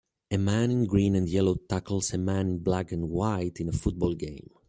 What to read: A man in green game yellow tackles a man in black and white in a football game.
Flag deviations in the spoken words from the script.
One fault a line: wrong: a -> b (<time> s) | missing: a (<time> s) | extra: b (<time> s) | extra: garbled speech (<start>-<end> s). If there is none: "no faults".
wrong: game -> and (1.1 s)